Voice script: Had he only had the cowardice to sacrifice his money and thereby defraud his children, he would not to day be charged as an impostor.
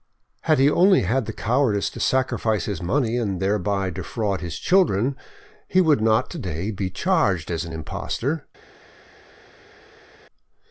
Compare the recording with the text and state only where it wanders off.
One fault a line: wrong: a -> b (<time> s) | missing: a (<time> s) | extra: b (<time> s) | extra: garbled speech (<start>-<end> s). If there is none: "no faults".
no faults